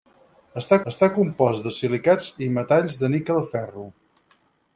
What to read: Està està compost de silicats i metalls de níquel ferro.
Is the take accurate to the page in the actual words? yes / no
yes